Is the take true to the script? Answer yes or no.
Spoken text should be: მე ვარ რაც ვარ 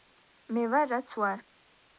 yes